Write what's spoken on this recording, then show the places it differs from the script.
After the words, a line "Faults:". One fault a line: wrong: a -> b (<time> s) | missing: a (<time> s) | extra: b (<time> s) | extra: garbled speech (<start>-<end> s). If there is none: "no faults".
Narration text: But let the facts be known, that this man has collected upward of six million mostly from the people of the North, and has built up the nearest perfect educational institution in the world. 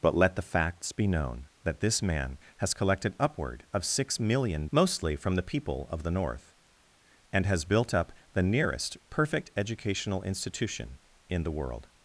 But let the facts be known, that this man has collected upward of six million mostly from the people of the North, and has built up the nearest perfect educational institution in the world.
Faults:
no faults